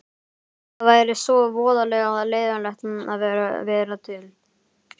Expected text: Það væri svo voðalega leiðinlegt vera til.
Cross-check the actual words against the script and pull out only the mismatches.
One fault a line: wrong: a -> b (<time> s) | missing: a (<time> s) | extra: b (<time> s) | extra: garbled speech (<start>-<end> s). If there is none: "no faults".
extra: að (3.2 s)